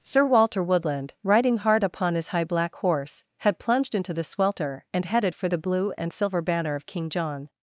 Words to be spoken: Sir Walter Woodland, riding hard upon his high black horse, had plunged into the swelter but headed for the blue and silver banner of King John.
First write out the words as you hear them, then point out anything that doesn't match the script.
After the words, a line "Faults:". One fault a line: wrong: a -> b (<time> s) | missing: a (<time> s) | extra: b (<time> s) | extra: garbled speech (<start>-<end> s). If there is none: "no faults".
Sir Walter Woodland, riding hard upon his high black horse, had plunged into the swelter and headed for the blue and silver banner of King John.
Faults:
wrong: but -> and (4.9 s)